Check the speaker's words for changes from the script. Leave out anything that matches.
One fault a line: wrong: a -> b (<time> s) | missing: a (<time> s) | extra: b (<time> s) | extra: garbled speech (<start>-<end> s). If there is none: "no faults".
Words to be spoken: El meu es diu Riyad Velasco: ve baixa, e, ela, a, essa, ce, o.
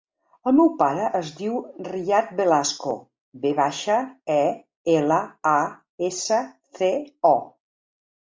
extra: pare (0.8 s)